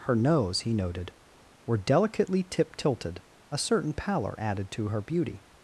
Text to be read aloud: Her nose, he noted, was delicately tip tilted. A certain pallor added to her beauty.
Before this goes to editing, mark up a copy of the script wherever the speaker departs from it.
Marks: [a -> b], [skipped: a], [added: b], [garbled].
Her nose, he noted, [was -> were] delicately tip tilted. A certain pallor added to her beauty.